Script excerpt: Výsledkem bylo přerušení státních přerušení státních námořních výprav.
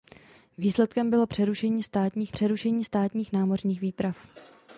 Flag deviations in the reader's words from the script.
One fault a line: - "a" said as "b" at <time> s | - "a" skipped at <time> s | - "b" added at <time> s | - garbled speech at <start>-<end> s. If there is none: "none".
none